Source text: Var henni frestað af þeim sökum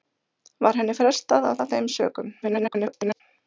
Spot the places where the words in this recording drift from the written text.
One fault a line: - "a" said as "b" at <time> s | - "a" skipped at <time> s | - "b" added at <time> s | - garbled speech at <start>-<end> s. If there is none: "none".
- "af" added at 1.6 s
- garbled speech at 2.4-3.2 s